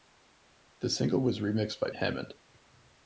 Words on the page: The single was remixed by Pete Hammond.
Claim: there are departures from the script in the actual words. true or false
true